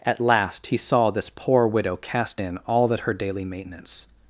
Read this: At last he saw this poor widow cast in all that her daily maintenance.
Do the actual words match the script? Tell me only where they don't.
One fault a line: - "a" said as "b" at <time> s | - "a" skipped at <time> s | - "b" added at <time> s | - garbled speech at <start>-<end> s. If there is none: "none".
none